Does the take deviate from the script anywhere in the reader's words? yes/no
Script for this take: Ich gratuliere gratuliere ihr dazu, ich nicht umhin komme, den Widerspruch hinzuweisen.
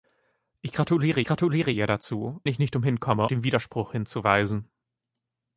no